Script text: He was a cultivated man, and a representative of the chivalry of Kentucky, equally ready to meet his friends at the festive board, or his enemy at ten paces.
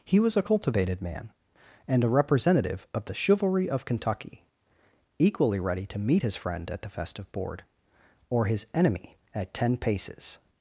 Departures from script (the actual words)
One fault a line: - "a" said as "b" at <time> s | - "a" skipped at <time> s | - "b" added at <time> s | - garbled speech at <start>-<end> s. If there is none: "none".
- "friends" said as "friend" at 6.4 s